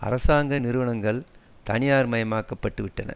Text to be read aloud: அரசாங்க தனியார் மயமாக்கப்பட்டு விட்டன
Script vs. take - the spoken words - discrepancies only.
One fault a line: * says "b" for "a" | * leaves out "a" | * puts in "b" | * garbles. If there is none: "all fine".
* puts in "நிறுவனங்கள்"